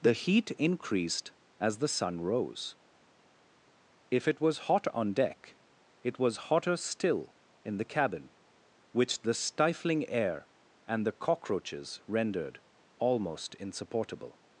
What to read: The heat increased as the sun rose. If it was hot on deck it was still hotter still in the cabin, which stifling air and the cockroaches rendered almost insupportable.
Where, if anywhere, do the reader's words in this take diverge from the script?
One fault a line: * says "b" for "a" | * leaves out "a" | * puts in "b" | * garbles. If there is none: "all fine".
* leaves out "still"
* puts in "the"